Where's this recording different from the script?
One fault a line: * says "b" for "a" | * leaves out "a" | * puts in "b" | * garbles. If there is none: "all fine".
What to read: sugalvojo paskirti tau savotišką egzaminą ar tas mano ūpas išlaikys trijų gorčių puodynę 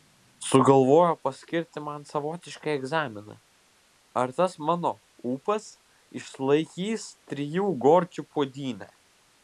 * says "man" for "tau"